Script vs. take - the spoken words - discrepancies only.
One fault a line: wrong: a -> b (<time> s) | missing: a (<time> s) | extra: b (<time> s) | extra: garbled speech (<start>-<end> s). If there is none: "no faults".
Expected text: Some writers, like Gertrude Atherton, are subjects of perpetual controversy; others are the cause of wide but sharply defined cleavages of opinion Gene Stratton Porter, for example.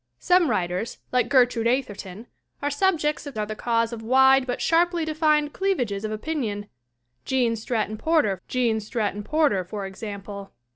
missing: perpetual controversy others (3.4 s)
extra: Gene Stratton Porter (8.5 s)